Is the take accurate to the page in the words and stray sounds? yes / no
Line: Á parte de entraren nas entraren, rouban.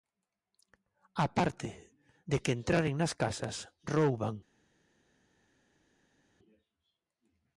no